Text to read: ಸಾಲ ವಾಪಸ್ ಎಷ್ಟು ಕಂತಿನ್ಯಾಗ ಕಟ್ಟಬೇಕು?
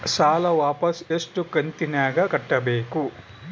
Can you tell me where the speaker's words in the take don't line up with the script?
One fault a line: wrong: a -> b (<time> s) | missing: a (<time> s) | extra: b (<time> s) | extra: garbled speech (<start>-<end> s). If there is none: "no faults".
no faults